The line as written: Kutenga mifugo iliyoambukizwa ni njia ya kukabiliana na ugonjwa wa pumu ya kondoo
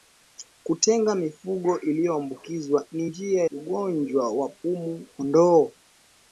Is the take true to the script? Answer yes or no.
no